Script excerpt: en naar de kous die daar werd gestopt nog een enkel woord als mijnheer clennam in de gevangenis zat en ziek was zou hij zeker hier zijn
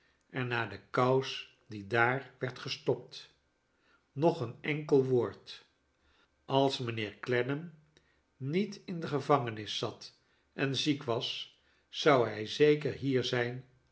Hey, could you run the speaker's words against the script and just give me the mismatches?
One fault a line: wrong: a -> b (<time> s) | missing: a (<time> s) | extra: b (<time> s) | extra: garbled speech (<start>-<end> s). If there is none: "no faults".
extra: niet (8.4 s)